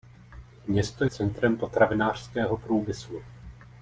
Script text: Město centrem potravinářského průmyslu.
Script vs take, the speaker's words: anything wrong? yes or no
no